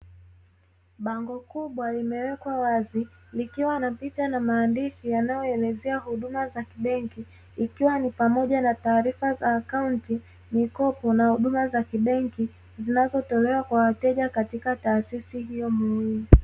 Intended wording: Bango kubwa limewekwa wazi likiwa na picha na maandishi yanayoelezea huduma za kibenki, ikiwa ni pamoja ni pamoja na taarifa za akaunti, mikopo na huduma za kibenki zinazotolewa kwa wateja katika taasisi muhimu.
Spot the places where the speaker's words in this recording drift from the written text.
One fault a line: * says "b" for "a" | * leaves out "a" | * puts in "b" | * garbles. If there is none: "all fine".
* leaves out "ni pamoja"
* puts in "hiyo"